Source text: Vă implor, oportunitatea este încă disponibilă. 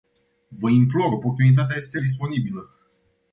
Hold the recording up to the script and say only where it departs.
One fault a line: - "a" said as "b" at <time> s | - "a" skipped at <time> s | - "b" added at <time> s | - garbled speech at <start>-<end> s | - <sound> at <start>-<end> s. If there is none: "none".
- "încă" skipped at 2.0 s